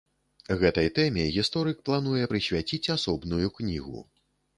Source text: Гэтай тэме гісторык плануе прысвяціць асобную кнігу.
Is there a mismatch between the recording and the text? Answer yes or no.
no